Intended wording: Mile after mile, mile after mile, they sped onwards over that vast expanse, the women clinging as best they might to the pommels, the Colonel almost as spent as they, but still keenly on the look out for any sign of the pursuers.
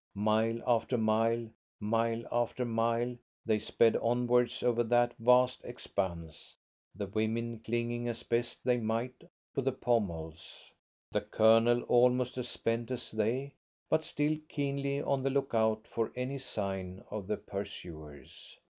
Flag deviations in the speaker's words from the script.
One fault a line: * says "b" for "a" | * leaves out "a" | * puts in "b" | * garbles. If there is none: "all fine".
all fine